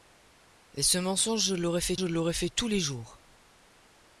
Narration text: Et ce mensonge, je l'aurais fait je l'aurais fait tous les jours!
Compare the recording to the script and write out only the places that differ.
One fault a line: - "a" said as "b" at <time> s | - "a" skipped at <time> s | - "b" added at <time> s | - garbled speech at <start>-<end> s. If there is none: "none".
none